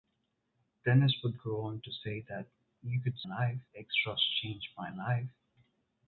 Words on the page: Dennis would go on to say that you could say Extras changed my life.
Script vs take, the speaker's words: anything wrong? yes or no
yes